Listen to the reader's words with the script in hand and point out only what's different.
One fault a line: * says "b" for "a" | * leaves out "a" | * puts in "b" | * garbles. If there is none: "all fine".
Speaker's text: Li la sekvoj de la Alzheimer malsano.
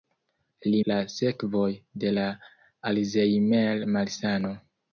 all fine